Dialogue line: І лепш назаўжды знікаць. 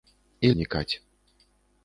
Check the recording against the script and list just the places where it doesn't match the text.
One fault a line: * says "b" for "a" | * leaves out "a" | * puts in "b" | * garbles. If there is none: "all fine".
* leaves out "лепш назаўжды"